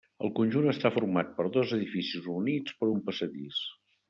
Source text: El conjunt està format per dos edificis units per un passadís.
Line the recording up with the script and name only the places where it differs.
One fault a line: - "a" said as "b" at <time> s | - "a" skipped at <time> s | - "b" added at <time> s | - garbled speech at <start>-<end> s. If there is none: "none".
none